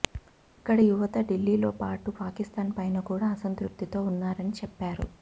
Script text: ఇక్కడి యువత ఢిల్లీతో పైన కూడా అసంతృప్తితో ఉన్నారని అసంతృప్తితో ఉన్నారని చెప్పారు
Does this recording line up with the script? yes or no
no